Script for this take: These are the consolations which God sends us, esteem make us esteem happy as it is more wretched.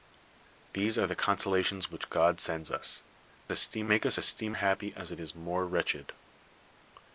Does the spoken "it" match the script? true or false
true